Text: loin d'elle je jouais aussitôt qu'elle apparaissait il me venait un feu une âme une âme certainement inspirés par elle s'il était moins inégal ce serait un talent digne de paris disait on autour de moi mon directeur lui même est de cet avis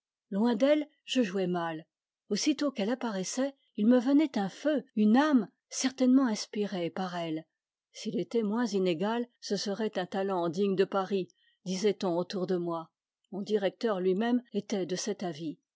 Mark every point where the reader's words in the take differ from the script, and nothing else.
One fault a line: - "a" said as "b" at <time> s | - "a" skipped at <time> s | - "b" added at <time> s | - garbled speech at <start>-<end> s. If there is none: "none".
- "mal" added at 1.4 s
- "une âme" skipped at 5.5 s
- "est" said as "était" at 14.5 s